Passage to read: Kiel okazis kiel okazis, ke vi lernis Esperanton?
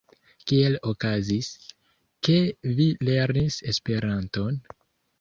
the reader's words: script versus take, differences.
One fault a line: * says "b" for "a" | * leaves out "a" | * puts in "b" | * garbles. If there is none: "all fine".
* leaves out "kiel okazis"